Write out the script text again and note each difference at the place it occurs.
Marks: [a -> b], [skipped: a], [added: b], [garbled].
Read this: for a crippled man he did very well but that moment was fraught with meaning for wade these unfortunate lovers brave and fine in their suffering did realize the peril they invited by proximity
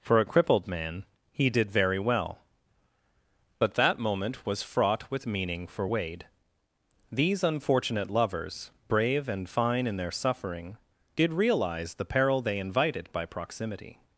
for a crippled man he did very well but that moment was fraught with meaning for wade these unfortunate lovers brave and fine in their suffering did realize the peril they invited by proximity